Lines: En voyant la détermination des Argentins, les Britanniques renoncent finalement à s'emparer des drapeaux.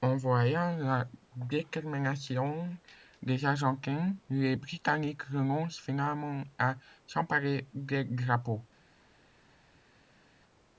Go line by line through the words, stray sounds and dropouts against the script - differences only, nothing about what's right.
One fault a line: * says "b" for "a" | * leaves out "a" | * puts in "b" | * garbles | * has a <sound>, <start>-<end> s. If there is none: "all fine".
all fine